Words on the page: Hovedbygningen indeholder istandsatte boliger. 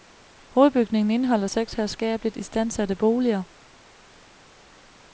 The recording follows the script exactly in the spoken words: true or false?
false